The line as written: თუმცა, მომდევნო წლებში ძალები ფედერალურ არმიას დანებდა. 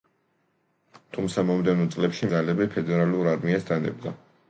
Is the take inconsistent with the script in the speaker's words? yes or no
no